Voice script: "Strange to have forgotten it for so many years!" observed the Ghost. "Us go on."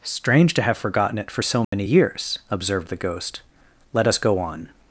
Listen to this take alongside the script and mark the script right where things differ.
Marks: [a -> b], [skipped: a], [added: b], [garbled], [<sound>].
"Strange to have forgotten it for so many [dropout] years!" observed the Ghost. [added: Let] "Us go on."